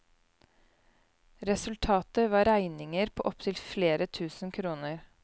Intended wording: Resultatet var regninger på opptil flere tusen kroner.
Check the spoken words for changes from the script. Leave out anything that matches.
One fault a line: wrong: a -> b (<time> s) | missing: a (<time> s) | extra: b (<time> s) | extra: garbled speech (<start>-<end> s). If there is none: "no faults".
no faults